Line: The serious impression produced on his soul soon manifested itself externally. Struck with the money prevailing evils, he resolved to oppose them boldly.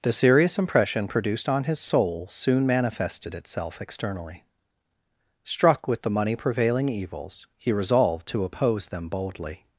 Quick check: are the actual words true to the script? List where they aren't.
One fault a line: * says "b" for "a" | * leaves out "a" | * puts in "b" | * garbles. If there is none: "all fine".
all fine